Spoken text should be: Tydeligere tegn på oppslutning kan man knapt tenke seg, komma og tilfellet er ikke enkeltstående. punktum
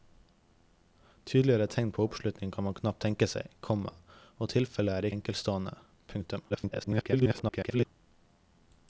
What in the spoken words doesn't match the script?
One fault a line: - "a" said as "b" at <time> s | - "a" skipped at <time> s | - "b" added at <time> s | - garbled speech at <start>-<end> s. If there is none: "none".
- "ikke" skipped at 5.1 s
- garbled speech at 6.5-7.9 s